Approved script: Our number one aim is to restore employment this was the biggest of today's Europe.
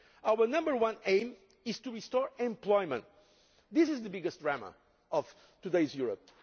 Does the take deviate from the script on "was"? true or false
true